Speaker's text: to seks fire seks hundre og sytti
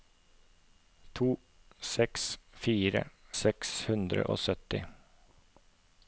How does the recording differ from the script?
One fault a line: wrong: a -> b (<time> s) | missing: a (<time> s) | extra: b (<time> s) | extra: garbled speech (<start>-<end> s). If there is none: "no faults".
no faults